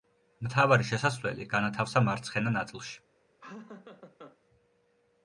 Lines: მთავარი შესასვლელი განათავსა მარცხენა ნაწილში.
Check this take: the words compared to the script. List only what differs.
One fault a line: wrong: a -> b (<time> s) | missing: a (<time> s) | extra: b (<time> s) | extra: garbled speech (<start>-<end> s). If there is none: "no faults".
no faults